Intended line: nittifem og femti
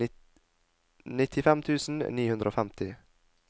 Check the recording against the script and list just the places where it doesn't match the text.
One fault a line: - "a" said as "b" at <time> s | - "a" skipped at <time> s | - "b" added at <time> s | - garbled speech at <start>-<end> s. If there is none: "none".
- "tusen ni hundre" added at 1.7 s